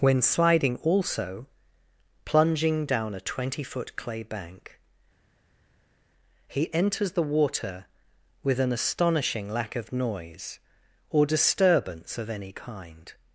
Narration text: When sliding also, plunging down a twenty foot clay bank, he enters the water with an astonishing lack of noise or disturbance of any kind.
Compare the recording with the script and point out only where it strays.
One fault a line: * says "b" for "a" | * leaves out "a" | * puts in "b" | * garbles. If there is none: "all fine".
all fine